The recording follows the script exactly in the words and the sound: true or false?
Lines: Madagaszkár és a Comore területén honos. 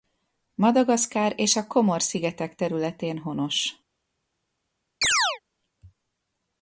false